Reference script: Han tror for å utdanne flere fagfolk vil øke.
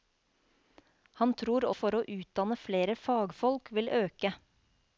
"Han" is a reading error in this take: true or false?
false